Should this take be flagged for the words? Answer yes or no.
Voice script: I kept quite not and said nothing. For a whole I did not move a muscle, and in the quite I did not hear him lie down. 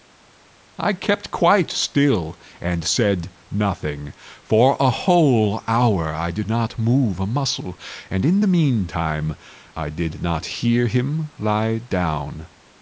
yes